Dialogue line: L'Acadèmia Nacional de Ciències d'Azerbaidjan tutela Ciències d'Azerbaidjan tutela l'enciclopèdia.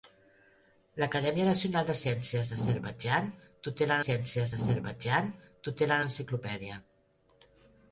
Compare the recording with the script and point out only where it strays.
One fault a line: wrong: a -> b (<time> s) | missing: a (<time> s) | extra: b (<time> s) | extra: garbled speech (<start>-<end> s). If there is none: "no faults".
no faults